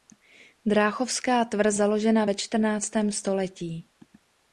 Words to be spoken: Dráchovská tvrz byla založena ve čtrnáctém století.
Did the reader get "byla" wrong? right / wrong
wrong